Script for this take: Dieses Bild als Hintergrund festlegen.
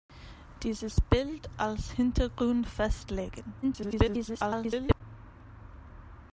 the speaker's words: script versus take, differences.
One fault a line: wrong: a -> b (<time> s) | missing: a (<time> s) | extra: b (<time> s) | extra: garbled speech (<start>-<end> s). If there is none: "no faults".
extra: garbled speech (3.6-5.0 s)